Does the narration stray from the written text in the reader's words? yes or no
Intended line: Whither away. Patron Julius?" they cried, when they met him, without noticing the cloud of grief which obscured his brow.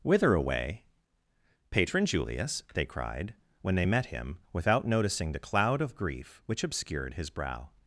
no